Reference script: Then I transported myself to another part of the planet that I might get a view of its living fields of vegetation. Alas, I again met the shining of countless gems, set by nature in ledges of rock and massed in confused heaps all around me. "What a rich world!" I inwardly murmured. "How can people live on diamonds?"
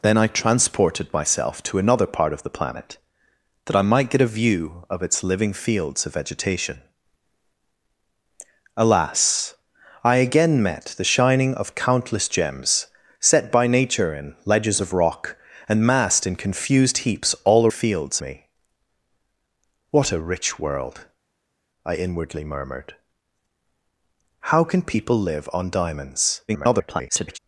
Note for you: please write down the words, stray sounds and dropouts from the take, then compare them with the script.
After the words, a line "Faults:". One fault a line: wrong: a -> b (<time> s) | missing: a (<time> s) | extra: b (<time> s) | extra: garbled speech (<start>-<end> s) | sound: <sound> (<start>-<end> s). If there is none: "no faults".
Then I transported myself to another part of the planet that I might get a view of its living fields of vegetation. Alas, I again met the shining of countless gems, set by nature in ledges of rock and massed in confused heaps all fields me. "What a rich world!" I inwardly murmured. "How can people live on diamonds?" [garbled]
Faults:
wrong: around -> fields (17.7 s)
extra: garbled speech (26.5-27.4 s)